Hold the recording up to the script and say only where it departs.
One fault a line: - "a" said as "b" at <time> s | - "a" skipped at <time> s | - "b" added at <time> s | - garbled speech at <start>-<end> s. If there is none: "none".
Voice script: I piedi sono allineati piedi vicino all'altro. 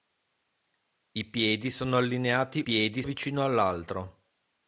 none